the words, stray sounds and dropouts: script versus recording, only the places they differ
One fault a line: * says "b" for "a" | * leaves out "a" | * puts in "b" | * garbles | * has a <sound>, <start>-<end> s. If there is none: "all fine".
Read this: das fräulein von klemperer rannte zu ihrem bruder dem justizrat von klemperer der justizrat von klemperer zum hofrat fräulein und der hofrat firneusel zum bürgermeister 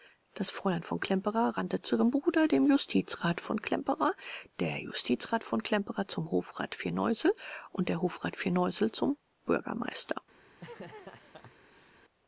* says "firneusel" for "fräulein"
* has a laugh, 10.5-12.0 s